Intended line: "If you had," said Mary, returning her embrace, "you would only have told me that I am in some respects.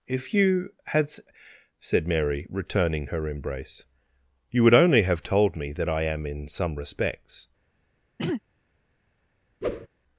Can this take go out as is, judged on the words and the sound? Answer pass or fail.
fail